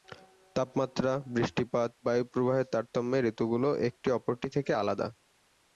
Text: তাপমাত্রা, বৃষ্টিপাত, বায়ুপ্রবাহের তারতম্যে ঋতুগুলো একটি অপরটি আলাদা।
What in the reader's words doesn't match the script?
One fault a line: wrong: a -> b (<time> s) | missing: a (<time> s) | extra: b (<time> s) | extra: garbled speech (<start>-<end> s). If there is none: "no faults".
extra: থেকে (4.5 s)